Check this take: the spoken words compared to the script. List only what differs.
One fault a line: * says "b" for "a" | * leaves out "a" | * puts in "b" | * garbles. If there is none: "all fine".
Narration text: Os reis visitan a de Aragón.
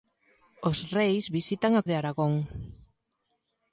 all fine